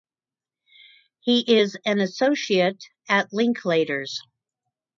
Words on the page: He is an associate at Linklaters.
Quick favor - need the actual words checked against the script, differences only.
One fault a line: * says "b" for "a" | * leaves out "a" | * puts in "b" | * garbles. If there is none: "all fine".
all fine